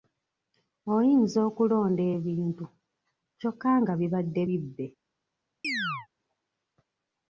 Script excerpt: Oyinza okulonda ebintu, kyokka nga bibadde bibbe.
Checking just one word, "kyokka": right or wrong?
right